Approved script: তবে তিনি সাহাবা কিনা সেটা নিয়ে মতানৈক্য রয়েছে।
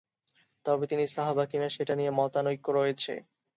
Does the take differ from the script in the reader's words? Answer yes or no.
no